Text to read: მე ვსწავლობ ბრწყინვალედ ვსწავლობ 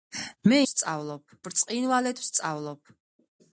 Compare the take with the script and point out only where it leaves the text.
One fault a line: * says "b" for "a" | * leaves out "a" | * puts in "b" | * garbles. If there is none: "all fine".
all fine